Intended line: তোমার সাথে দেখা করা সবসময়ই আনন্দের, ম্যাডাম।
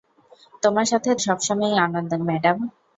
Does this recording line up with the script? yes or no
no